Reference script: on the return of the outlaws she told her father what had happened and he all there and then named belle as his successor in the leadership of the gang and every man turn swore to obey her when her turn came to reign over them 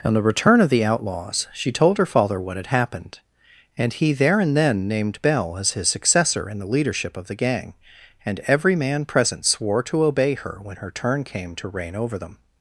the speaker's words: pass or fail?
fail